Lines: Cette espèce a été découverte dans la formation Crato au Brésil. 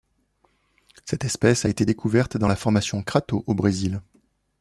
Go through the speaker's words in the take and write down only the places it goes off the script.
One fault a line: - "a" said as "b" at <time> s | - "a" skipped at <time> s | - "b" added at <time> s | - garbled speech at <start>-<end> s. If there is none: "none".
none